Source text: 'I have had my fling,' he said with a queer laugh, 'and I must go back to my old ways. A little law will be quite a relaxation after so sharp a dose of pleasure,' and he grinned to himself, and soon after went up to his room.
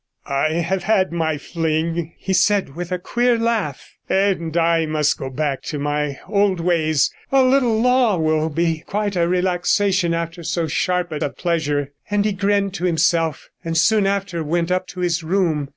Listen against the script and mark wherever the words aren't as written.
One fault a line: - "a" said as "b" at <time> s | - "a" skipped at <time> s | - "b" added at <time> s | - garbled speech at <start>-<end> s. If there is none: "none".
- "dose" skipped at 11.2 s